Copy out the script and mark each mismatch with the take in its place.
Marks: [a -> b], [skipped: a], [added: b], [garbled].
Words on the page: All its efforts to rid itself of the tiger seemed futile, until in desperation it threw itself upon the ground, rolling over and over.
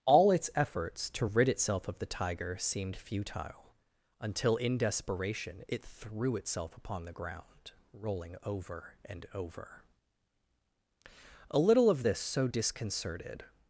All its efforts to rid itself of the tiger seemed futile, until in desperation it threw itself upon the ground, rolling over and over. [added: A little of this so disconcerted]